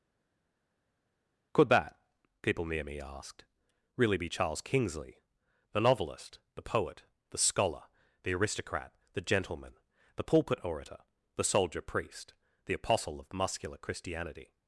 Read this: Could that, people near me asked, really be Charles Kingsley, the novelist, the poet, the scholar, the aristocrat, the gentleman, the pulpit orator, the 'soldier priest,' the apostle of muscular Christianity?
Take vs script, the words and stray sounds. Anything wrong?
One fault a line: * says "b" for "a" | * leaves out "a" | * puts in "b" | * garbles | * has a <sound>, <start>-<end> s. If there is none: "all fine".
all fine